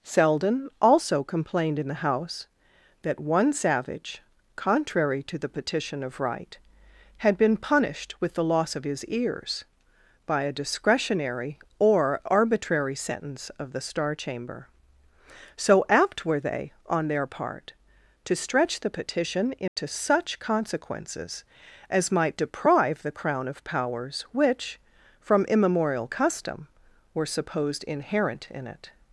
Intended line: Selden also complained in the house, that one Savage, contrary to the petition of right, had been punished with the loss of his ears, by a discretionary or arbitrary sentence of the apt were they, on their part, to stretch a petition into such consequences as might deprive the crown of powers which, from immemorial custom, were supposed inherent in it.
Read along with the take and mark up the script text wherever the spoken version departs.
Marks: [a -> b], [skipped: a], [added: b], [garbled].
Selden also complained in the house, that one Savage, contrary to the petition of right, had been punished with the loss of his ears, by a discretionary or arbitrary sentence of the [added: star chamber so] apt were they, on their part, to stretch [a -> the] petition into such consequences as might deprive the crown of powers which, from immemorial custom, were supposed inherent in it.